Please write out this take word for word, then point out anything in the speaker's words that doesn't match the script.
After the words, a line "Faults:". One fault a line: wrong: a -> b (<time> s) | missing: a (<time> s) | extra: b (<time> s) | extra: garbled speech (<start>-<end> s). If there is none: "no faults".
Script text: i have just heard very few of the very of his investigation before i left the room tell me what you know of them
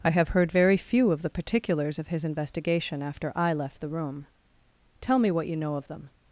i have heard very few of the particulars of his investigation after i left the room tell me what you know of them
Faults:
missing: just (0.3 s)
wrong: very -> particulars (1.3 s)
wrong: before -> after (3.0 s)